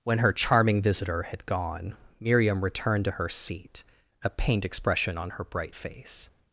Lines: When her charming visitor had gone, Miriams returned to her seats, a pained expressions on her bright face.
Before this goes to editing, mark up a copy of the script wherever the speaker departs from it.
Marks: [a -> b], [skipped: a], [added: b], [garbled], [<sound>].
When her charming visitor had gone, [Miriams -> Miriam] returned to her [seats, -> seat] a pained [expressions -> expression] on her bright face.